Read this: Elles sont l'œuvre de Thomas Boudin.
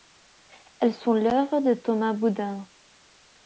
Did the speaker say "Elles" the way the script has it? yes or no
yes